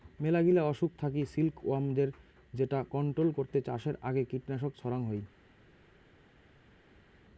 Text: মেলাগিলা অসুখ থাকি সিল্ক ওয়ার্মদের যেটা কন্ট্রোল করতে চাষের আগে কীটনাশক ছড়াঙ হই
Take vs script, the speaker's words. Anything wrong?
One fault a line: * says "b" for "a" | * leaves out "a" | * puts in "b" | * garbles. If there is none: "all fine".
all fine